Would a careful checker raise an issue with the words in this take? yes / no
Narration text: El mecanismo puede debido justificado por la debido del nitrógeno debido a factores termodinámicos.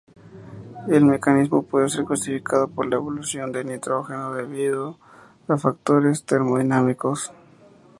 yes